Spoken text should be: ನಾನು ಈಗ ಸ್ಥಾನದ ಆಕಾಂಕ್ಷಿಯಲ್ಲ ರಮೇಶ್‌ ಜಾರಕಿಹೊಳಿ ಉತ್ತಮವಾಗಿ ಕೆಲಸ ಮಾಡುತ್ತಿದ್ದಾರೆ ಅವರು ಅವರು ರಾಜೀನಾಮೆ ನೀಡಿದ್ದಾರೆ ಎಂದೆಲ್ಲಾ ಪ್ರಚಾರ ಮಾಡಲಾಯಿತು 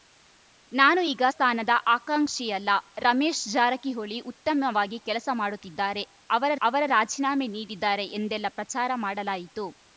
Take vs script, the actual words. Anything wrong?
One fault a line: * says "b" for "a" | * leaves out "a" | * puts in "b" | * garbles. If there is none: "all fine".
all fine